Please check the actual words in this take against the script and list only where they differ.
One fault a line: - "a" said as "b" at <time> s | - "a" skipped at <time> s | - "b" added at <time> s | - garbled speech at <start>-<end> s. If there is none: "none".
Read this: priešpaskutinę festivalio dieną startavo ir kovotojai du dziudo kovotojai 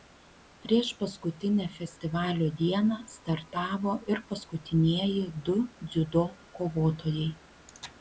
- "kovotojai" said as "paskutinieji" at 4.3 s